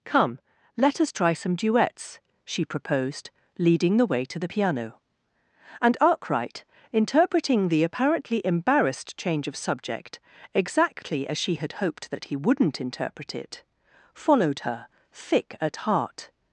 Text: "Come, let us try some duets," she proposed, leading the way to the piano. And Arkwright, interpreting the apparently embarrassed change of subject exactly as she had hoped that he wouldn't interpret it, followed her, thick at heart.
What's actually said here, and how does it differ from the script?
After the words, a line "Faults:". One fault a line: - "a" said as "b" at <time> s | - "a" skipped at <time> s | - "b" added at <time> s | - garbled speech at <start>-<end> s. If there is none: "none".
"Come, let us try some duets," she proposed, leading the way to the piano. And Arkwright, interpreting the apparently embarrassed change of subject exactly as she had hoped that he wouldn't interpret it, followed her, thick at heart.
Faults:
none